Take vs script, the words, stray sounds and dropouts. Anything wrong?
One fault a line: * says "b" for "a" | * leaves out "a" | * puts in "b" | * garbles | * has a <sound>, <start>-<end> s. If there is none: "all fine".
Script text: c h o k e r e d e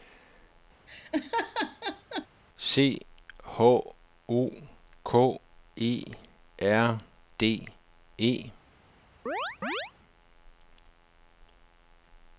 * has a laugh, 0.9-2.3 s
* leaves out "e"
* has a chirp, 9.3-9.9 s